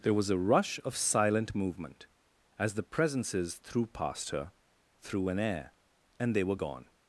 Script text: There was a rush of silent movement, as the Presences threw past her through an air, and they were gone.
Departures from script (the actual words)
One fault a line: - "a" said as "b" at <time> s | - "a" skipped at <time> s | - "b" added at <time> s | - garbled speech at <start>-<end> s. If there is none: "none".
none